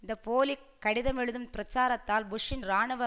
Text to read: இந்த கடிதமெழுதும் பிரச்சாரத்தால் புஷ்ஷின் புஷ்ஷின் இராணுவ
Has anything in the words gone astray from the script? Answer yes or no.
yes